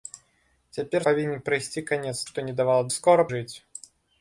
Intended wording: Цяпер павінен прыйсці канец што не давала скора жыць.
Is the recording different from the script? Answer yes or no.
no